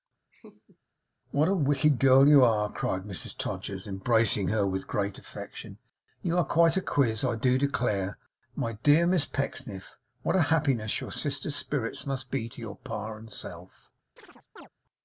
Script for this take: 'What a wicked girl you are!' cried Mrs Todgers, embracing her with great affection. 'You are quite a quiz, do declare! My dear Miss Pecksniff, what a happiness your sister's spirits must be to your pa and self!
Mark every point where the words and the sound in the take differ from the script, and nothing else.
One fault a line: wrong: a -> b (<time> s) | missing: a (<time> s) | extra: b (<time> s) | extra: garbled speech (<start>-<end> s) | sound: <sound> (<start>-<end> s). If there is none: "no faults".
sound: laugh (0.3-0.8 s)
extra: I (7.2 s)
sound: chirp (14.2-14.7 s)